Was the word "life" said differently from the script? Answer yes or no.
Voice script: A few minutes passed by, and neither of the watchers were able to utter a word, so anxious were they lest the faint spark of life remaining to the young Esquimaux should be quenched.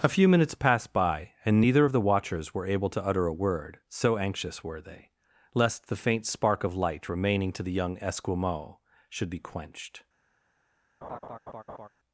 yes